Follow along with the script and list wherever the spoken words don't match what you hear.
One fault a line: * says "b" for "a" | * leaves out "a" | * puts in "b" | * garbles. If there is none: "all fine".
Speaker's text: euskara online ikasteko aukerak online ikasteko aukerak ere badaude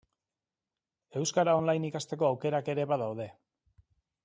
* leaves out "online ikasteko aukerak"